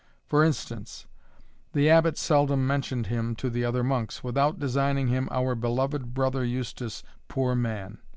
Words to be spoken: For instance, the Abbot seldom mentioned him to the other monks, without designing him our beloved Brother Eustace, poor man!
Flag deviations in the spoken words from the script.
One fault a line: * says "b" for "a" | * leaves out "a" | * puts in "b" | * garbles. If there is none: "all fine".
all fine